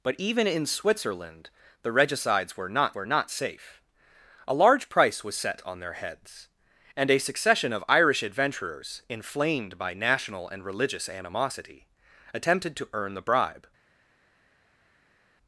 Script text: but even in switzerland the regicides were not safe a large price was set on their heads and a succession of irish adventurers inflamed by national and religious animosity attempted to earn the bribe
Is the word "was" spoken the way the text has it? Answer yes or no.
yes